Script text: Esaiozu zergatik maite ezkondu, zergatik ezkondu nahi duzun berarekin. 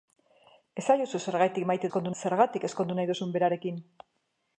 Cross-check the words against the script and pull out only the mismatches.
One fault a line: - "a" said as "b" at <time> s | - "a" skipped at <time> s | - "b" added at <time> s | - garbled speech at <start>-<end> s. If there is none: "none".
none